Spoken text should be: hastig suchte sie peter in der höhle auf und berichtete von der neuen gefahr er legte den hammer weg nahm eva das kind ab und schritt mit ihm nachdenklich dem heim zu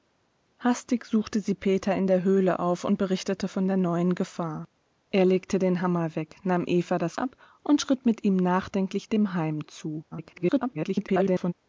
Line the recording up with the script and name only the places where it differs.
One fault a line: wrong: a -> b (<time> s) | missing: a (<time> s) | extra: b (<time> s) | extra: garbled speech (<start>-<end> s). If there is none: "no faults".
missing: kind (7.2 s)
extra: garbled speech (10.1-11.5 s)